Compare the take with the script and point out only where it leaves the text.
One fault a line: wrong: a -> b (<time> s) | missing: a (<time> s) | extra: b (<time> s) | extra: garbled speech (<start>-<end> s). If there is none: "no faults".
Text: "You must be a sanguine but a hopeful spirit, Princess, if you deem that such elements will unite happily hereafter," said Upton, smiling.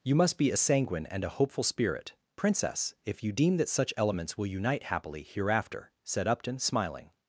wrong: but -> and (1.1 s)